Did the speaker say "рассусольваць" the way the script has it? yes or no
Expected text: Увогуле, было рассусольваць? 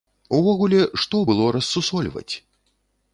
yes